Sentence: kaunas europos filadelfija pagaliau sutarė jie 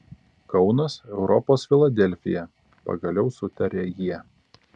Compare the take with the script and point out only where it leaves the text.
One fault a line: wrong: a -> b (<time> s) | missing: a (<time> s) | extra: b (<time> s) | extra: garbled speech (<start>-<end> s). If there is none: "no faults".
no faults